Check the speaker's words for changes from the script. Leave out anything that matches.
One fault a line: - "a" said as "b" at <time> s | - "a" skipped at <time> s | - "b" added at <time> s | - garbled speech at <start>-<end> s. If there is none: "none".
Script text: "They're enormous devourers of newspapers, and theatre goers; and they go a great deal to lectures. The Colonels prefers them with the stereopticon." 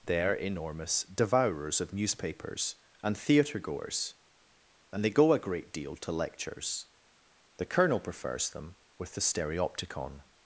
- "Colonels" said as "Colonel" at 7.7 s